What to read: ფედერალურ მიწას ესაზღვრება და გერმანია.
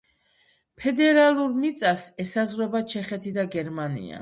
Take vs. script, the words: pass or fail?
fail